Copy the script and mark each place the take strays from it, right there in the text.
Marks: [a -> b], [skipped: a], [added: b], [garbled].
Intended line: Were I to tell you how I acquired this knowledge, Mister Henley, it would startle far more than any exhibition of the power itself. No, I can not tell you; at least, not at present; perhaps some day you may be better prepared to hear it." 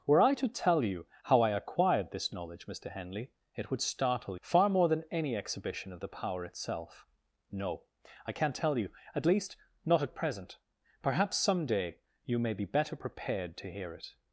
Were I to tell you how I acquired this knowledge, Mister Henley, it would startle far more than any exhibition of the power itself. No, I can not tell you; at least, not at present; perhaps some day you may be better prepared to hear it."